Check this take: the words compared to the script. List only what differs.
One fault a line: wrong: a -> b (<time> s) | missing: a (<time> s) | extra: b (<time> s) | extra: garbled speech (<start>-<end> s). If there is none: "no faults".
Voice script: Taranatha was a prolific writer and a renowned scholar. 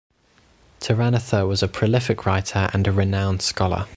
no faults